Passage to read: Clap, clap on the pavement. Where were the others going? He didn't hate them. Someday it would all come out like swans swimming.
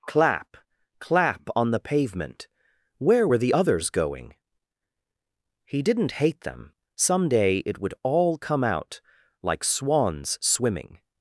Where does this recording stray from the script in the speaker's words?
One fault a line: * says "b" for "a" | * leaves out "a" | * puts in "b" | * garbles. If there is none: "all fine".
all fine